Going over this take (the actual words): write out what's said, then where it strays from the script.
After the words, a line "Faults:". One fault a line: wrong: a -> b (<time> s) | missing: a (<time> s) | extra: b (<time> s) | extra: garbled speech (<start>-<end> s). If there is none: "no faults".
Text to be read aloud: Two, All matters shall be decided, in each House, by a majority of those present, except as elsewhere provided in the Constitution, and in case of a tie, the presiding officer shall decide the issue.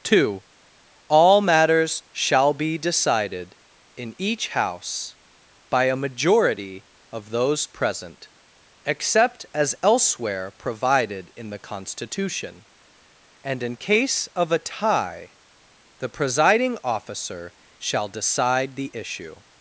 Two, All matters shall be decided, in each House, by a majority of those present, except as elsewhere provided in the Constitution, and in case of a tie, the presiding officer shall decide the issue.
Faults:
no faults